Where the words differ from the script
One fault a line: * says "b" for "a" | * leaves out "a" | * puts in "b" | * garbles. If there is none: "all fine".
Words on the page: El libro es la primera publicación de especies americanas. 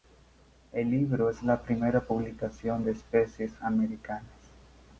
all fine